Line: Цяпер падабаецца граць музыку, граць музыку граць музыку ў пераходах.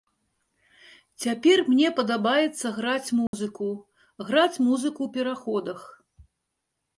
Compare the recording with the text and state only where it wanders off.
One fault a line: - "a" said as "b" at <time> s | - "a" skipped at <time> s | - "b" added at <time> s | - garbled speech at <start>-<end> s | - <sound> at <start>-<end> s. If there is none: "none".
- "мне" added at 1.7 s
- dropout at 3.3-3.3 s
- "граць музыку" skipped at 5.0 s